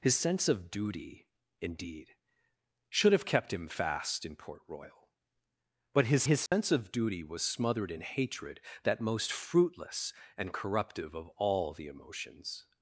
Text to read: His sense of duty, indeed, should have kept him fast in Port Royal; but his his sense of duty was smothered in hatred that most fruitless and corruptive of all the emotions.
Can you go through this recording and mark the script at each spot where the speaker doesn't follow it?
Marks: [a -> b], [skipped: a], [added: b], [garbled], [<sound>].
His sense of duty, indeed, should have kept him fast in Port Royal; but his his sense [dropout] of duty was smothered in hatred that most fruitless and corruptive of all the emotions.